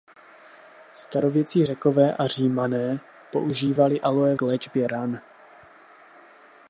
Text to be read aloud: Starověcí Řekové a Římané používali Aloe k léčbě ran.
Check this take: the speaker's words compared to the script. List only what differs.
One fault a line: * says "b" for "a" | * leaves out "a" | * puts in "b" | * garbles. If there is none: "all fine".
all fine